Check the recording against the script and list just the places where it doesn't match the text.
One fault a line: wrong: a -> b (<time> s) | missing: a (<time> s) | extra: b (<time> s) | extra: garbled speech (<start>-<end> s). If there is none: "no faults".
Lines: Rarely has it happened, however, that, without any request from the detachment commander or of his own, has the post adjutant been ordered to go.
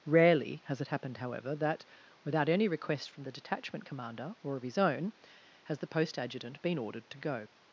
no faults